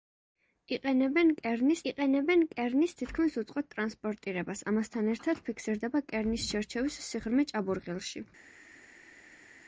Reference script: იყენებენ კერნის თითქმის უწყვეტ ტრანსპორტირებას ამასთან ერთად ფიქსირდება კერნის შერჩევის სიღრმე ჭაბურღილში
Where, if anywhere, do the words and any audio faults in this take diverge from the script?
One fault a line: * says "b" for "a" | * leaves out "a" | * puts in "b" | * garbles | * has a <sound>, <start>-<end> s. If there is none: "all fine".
* puts in "იყენებენ კერნის"